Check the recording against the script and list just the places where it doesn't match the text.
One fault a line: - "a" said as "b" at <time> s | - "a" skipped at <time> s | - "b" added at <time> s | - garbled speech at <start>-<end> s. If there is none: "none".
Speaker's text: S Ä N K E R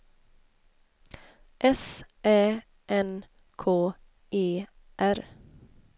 none